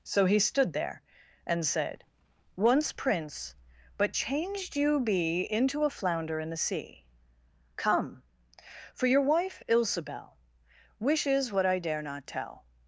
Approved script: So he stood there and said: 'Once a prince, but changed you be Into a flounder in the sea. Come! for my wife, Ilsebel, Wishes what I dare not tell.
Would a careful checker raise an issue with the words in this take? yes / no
yes